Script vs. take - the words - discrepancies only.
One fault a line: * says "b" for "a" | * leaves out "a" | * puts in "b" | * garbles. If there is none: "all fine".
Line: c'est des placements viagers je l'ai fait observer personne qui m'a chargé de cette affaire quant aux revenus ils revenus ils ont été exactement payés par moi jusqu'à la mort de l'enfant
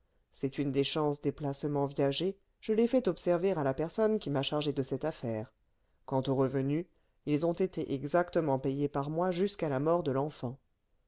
* puts in "une"
* puts in "chances des"
* puts in "à la"
* leaves out "revenus ils"